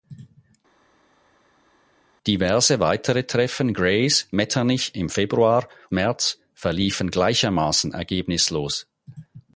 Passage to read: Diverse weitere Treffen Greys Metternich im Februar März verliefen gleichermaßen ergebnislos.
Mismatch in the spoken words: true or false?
false